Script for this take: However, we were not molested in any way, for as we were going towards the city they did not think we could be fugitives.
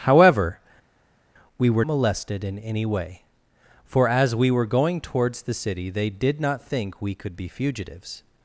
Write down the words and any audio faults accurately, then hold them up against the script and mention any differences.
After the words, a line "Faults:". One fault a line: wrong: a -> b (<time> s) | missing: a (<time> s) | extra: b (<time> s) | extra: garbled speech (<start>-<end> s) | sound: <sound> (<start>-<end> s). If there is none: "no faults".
However, we were molested in any way, for as we were going towards the city they did not think we could be fugitives.
Faults:
missing: not (1.8 s)